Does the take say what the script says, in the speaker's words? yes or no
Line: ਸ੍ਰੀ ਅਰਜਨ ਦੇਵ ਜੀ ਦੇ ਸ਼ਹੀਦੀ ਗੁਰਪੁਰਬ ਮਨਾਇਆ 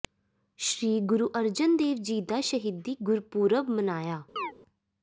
no